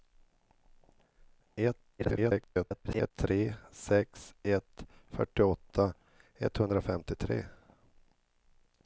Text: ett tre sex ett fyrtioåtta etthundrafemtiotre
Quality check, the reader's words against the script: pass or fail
fail